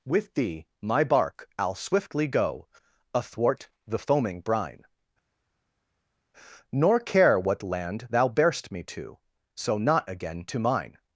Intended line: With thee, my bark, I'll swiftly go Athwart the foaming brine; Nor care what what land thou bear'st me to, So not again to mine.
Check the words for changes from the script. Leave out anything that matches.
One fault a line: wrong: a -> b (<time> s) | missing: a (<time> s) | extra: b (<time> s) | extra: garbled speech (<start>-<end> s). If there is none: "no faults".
missing: what (7.6 s)